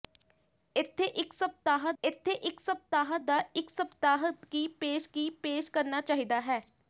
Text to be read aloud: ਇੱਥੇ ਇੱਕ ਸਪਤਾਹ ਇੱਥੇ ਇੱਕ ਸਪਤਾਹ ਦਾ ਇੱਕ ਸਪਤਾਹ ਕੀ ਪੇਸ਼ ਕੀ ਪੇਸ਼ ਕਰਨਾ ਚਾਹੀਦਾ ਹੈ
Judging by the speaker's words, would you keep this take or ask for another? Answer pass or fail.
pass